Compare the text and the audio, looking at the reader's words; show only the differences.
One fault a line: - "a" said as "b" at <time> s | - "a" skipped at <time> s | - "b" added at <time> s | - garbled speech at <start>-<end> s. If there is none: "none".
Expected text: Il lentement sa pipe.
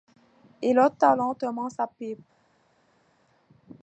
- "ôta" added at 0.8 s